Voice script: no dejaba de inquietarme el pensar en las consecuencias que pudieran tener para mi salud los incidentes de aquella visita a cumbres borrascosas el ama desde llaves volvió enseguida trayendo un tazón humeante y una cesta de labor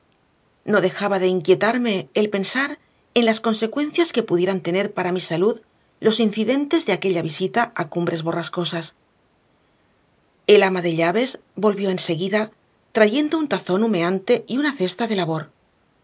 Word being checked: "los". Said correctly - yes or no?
yes